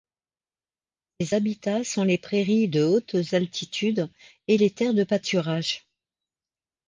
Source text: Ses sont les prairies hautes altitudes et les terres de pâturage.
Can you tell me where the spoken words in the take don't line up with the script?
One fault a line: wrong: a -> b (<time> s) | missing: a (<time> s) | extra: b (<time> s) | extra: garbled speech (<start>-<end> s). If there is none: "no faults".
extra: habitats (1.3 s)
extra: de (2.7 s)